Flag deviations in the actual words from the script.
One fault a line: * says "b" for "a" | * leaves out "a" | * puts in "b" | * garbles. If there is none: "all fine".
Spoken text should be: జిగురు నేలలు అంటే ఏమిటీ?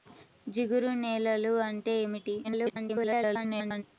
* garbles